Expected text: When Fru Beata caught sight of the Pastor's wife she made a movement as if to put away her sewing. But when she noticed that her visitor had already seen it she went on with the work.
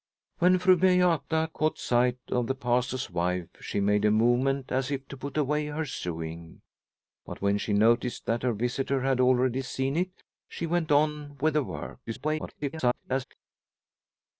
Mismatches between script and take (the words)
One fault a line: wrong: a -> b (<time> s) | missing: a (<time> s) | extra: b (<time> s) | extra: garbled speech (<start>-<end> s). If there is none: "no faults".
extra: garbled speech (12.1-13.2 s)